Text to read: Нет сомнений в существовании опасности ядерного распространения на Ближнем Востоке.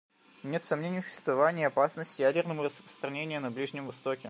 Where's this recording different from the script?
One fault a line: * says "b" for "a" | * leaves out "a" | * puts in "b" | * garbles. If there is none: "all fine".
all fine